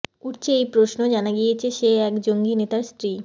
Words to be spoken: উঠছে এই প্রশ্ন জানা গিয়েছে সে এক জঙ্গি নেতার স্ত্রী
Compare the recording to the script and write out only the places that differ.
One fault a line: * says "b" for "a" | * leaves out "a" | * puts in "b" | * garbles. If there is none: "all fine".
all fine